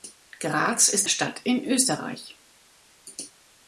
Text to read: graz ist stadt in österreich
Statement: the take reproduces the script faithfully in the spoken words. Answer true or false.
true